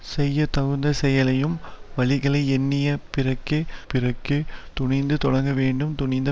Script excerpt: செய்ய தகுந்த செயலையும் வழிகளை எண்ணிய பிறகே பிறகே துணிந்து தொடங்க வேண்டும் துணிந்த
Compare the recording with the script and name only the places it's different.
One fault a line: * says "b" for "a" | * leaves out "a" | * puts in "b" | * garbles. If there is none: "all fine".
all fine